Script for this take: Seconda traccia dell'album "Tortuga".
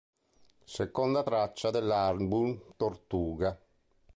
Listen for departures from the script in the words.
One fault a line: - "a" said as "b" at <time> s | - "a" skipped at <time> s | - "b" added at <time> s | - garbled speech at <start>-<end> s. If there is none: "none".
none